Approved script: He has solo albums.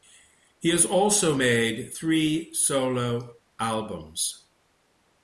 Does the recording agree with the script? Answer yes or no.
no